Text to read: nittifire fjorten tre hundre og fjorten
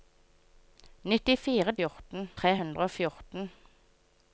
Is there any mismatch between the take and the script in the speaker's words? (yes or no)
no